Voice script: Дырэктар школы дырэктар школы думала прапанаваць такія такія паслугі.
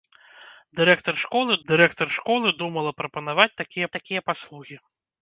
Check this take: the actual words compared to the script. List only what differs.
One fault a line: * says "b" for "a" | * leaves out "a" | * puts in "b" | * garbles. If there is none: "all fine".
all fine